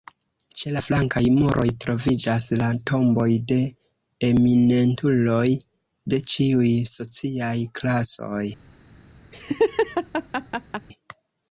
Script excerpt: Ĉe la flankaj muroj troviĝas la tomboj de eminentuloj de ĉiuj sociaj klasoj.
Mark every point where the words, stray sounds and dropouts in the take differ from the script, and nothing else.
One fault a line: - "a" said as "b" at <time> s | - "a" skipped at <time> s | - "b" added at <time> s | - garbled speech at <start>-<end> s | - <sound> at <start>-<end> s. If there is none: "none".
- laugh at 9.3-10.9 s